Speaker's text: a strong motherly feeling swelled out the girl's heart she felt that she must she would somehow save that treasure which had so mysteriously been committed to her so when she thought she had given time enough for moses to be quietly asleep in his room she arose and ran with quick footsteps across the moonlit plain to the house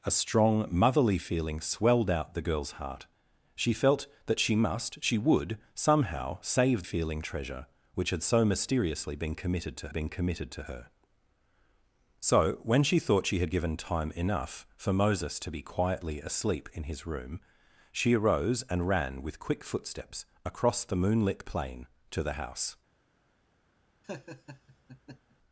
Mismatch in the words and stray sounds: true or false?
true